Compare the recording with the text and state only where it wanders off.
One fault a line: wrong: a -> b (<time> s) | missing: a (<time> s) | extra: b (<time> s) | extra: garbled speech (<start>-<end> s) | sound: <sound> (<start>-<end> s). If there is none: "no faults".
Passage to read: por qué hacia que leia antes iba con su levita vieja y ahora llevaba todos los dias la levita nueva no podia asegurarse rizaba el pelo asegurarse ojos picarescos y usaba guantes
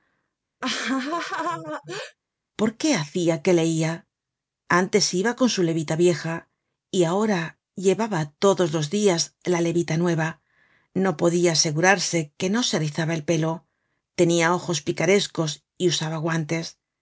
sound: laugh (0.6-2.2 s)
extra: que no se (12.4 s)
wrong: asegurarse -> tenia (14.2 s)